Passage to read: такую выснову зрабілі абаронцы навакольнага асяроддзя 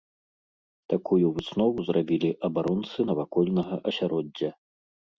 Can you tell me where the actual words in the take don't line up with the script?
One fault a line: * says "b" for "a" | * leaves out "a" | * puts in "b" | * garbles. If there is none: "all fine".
all fine